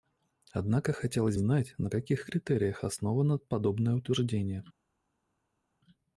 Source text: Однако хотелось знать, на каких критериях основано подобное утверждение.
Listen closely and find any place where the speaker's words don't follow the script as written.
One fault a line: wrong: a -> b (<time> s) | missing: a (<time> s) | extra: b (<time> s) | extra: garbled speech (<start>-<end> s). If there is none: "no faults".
no faults